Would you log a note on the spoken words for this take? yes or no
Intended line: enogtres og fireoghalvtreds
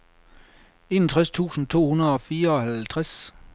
yes